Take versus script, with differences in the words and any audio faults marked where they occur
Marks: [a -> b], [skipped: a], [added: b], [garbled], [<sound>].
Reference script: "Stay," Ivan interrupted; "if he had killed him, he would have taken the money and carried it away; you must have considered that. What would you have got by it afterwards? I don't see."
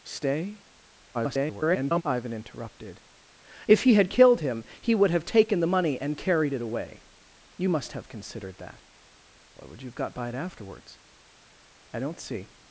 "Stay," [garbled] Ivan interrupted; "if he had killed him, he would have taken the money and carried it away; you must have considered that. What would you have got by it afterwards? I don't see."